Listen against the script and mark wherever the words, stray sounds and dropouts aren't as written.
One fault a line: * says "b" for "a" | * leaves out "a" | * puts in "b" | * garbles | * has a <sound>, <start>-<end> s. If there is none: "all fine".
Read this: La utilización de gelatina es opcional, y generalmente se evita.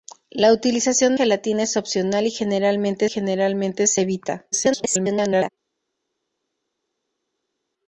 * leaves out "de"
* puts in "generalmente"
* garbles